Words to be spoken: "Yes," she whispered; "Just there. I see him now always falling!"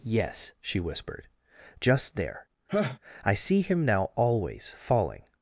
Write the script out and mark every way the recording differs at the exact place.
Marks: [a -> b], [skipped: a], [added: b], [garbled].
"Yes," she whispered; "Just there. I see him now always falling!"